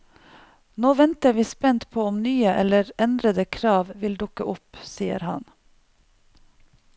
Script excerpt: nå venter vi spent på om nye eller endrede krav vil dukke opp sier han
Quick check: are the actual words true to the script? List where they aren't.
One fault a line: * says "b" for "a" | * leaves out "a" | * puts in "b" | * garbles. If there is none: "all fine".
all fine